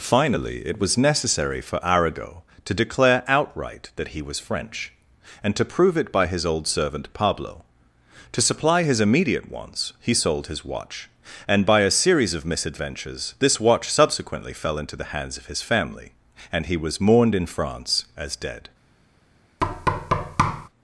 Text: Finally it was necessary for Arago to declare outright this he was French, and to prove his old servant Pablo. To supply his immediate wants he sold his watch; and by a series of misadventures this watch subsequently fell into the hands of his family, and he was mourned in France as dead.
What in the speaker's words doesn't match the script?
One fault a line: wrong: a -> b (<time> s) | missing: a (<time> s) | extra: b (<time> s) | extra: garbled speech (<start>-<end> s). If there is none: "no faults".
wrong: this -> that (4.0 s)
extra: it by (6.0 s)